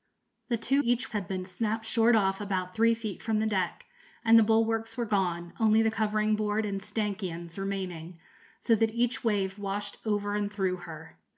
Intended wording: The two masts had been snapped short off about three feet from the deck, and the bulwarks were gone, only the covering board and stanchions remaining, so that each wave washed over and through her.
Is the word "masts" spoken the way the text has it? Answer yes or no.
no